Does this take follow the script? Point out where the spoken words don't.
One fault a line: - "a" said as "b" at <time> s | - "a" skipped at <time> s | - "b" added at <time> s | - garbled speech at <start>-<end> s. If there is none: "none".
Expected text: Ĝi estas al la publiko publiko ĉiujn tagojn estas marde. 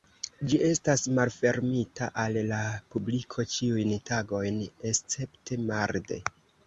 - "malfermita" added at 1.2 s
- "publiko" skipped at 3.5 s
- "estas" said as "escepte" at 4.9 s